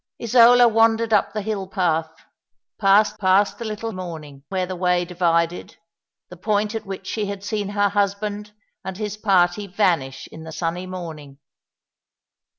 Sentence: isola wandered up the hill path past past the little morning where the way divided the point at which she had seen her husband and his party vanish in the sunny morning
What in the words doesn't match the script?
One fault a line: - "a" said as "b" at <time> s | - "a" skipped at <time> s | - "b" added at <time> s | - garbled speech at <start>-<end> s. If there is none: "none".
none